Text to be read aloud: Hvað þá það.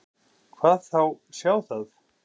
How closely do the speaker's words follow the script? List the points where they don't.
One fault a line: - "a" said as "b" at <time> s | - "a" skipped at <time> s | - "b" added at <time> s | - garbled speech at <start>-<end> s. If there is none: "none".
- "sjá" added at 1.4 s